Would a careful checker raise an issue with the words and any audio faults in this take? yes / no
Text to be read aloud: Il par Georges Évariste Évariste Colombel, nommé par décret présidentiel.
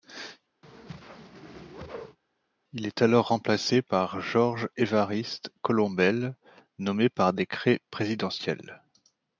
yes